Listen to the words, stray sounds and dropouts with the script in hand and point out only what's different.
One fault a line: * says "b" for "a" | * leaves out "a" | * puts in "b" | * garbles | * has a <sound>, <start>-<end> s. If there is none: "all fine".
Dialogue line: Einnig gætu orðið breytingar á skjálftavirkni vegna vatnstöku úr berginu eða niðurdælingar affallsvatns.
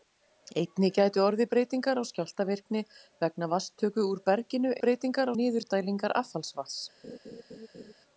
* says "breytingar" for "eða"
* has a laugh, 7.0-7.9 s